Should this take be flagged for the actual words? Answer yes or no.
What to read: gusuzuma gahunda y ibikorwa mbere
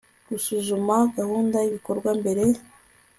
no